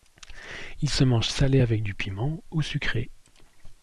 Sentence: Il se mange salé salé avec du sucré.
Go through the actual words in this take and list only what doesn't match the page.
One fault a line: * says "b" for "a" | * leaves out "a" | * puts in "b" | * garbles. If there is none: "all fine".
* leaves out "salé"
* puts in "piment ou"